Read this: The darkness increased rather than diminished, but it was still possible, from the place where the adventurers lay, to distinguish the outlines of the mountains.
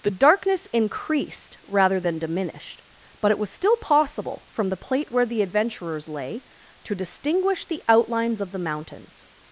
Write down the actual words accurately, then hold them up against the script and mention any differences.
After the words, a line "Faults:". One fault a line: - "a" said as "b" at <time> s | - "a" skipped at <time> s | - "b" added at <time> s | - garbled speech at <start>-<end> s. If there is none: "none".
The darkness increased rather than diminished, but it was still possible, from the plate where the adventurers lay, to distinguish the outlines of the mountains.
Faults:
- "place" said as "plate" at 4.8 s